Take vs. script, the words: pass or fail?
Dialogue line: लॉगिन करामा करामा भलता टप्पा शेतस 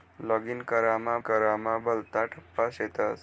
pass